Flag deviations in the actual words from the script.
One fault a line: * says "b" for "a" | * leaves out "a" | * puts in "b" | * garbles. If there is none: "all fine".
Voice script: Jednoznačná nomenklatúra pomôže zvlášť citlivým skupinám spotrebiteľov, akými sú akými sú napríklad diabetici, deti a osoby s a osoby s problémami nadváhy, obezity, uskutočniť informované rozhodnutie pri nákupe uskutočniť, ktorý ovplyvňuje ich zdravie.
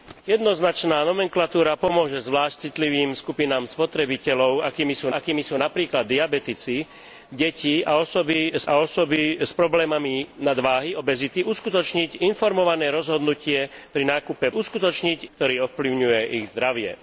all fine